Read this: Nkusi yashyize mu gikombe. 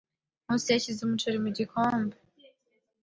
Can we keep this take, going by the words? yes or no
no